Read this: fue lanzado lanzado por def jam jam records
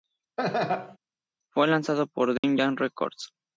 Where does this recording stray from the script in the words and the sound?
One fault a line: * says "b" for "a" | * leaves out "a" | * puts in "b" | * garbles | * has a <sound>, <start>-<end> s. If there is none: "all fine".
* has a laugh, 0.4-1.0 s
* leaves out "lanzado"
* has a dropout, 2.4-2.4 s
* leaves out "jam"